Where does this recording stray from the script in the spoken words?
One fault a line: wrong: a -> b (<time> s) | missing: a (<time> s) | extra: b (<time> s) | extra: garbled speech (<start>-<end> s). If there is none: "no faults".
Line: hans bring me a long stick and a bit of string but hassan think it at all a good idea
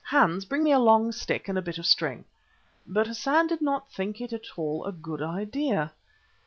extra: did not (3.5 s)